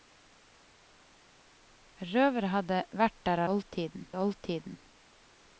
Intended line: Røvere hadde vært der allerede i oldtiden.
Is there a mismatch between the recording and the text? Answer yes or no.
yes